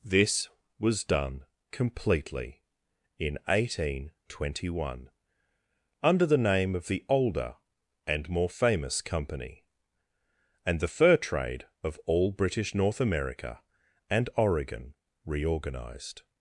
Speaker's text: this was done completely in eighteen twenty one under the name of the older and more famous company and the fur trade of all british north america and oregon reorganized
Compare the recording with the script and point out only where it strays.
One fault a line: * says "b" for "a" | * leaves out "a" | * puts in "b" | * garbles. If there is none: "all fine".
all fine